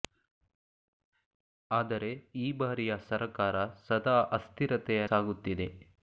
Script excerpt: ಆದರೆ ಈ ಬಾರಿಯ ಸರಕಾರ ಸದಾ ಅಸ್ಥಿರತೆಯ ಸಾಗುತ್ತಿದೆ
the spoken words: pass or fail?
pass